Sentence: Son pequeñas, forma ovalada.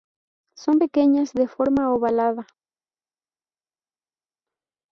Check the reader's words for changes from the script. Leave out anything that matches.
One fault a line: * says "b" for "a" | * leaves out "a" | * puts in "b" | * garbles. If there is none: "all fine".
* puts in "de"